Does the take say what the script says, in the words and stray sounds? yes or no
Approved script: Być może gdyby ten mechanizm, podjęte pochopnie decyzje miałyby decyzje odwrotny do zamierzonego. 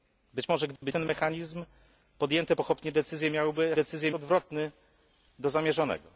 no